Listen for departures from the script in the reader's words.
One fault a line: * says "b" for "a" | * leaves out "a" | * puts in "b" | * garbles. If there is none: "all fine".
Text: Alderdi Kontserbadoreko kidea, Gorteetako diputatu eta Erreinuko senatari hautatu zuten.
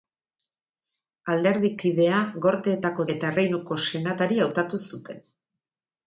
* leaves out "Kontserbadoreko"
* leaves out "diputatu"